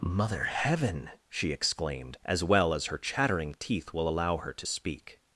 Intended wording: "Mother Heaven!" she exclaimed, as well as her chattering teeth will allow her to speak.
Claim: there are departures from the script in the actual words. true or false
false